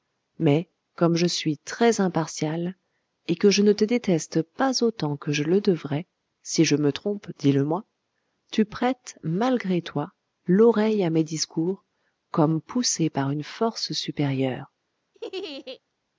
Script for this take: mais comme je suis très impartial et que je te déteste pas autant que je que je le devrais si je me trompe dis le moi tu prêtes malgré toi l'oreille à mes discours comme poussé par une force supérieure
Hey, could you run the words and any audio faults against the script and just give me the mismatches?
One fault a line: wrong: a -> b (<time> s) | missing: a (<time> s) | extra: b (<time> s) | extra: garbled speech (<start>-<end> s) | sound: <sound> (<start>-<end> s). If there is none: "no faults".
extra: ne (3.6 s)
missing: que je (5.4 s)
sound: laugh (15.1-15.8 s)